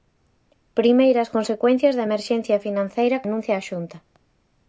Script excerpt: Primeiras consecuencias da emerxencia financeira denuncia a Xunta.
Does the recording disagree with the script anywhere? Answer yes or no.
no